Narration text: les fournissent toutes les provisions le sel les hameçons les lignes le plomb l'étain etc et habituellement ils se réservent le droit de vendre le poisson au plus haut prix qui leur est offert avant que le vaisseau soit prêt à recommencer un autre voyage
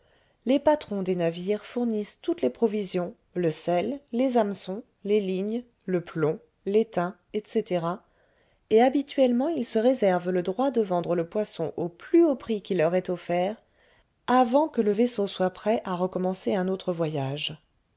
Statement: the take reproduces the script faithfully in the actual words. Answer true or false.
false